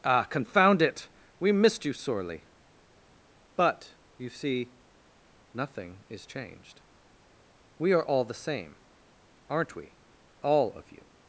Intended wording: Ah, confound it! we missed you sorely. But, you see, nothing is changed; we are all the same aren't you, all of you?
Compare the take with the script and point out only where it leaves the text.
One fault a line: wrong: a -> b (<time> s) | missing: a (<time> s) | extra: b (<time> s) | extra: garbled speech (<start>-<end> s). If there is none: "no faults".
wrong: you -> we (9.8 s)